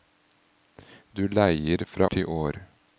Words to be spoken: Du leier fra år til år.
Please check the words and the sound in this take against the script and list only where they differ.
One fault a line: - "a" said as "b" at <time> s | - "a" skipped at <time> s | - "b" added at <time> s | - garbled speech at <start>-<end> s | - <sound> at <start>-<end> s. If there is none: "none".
- "år" skipped at 2.1 s